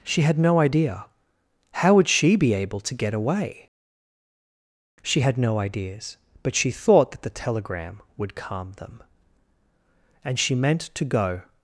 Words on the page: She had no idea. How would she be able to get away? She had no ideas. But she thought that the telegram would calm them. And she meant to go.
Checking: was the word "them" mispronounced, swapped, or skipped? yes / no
no